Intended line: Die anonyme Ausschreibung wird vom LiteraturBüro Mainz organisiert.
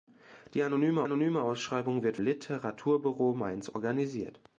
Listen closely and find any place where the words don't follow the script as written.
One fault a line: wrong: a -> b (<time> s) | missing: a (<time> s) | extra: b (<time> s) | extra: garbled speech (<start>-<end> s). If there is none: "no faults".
extra: anonyme (1.0 s)
missing: vom (2.2 s)